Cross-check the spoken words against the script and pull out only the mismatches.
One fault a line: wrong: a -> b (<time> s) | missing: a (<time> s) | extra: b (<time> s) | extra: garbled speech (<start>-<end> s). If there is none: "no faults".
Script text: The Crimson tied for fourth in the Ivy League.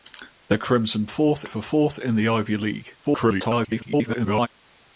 wrong: tied -> fourth (1.1 s)
extra: garbled speech (3.0-4.5 s)